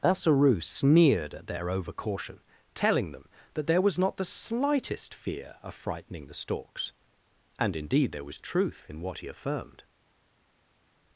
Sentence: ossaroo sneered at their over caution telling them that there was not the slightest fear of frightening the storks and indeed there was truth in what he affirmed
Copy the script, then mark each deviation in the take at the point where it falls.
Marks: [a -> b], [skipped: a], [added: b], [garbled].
ossaroo sneered at their over caution telling them that there was not the slightest fear of frightening the storks and indeed there was truth in what he affirmed